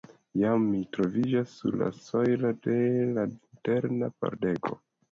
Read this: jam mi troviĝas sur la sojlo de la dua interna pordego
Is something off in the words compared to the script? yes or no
yes